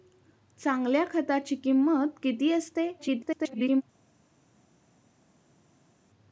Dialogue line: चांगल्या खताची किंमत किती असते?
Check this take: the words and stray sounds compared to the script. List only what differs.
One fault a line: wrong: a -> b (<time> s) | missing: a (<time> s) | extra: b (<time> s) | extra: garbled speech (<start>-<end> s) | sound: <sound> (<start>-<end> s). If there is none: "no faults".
extra: garbled speech (3.0-3.8 s)